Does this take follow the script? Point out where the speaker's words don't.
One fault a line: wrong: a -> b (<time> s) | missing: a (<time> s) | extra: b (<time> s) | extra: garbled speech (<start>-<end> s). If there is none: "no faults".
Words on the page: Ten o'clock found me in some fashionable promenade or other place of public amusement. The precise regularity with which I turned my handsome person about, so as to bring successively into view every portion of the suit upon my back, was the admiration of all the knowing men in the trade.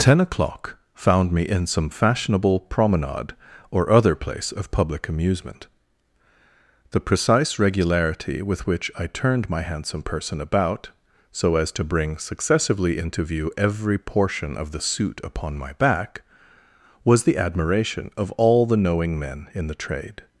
no faults